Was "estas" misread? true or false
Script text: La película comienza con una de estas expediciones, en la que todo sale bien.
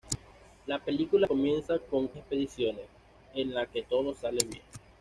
true